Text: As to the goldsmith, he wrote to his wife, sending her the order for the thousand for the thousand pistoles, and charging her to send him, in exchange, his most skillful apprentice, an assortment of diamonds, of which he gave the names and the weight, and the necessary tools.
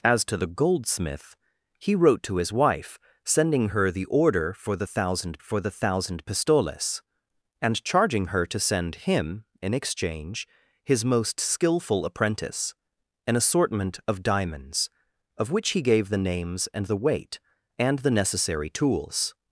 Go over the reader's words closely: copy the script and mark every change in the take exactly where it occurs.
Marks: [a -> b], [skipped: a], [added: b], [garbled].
As to the goldsmith, he wrote to his wife, sending her the order for the thousand for the thousand pistoles, and charging her to send him, in exchange, his most skillful apprentice, an assortment of diamonds, of which he gave the names and the weight, and the necessary tools.